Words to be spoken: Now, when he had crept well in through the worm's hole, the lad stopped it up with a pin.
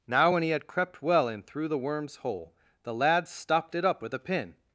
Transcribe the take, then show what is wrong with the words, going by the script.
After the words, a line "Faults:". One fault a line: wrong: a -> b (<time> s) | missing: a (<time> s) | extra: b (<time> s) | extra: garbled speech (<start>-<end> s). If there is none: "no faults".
Now, when he had crept well in through the worm's hole, the lad stopped it up with a pin.
Faults:
no faults